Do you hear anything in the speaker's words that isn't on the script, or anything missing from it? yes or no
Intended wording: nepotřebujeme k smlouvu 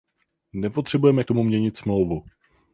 yes